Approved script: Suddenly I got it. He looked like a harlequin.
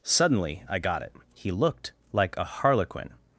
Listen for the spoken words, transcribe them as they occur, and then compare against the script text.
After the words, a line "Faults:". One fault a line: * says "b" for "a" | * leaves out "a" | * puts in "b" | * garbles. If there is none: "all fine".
Suddenly I got it. He looked like a harlequin.
Faults:
all fine